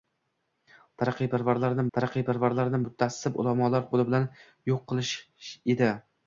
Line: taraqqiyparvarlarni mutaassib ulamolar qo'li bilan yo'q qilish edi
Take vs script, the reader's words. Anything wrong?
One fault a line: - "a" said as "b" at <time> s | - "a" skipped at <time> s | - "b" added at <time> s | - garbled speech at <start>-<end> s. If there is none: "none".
- "taraqqiyparvarlarni" added at 2.0 s